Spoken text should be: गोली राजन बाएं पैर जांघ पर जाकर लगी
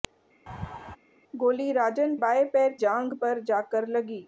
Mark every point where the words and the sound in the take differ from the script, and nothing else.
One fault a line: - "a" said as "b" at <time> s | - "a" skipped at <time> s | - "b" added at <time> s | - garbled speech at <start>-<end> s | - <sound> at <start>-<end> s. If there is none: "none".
- laugh at 0.5-1.0 s